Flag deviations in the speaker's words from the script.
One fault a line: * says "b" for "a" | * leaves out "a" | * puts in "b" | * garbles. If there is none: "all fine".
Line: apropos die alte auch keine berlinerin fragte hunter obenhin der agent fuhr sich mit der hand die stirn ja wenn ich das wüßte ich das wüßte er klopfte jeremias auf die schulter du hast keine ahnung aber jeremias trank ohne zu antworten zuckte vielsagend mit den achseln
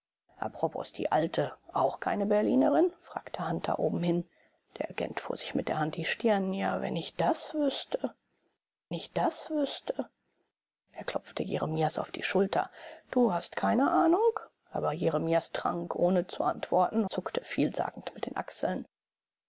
all fine